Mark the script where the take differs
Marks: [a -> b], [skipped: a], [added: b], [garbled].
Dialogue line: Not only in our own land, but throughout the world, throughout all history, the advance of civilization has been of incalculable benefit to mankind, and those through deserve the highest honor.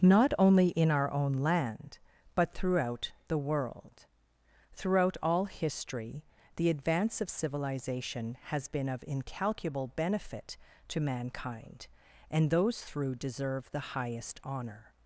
Not only in our own land, but throughout the world, throughout all history, the advance of civilization has been of incalculable benefit to mankind, and those through deserve the highest honor.